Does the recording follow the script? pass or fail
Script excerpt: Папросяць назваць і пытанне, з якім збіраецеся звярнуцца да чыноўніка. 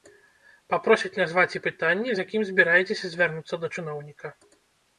pass